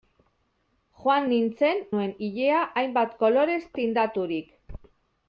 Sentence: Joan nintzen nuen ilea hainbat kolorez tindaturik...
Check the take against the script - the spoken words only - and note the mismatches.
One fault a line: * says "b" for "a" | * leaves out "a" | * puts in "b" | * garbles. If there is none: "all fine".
all fine